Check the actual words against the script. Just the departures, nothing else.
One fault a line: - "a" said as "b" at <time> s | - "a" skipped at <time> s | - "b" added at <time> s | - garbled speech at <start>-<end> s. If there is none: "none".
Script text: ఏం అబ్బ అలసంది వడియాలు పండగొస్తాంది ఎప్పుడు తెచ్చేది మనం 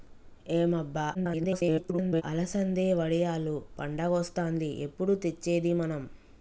- garbled speech at 1.1-2.2 s